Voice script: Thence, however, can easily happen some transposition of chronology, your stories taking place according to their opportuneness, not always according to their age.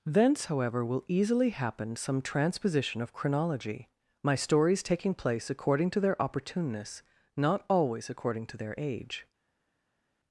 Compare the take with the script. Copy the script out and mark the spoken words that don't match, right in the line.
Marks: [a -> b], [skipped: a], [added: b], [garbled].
Thence, however, [can -> will] easily happen some transposition of chronology, [your -> my] stories taking place according to their opportuneness, not always according to their age.